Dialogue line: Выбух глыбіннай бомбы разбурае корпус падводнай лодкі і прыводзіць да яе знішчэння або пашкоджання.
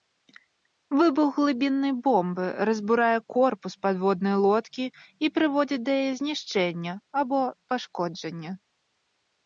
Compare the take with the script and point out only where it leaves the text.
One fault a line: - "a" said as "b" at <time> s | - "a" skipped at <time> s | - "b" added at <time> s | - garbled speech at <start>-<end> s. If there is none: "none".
none